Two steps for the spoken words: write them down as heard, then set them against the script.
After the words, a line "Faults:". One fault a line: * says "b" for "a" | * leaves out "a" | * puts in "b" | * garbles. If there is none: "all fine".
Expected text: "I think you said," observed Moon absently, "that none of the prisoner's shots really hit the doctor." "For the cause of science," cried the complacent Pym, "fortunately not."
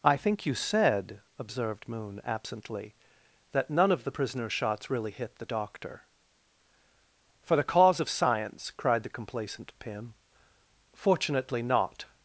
"I think you said," observed Moon absently, "that none of the prisoner's shots really hit the doctor." "For the cause of science," cried the complacent Pym, "fortunately not."
Faults:
all fine